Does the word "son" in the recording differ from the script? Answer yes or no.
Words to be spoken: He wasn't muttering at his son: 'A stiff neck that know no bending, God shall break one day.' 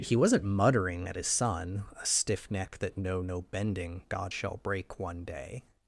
no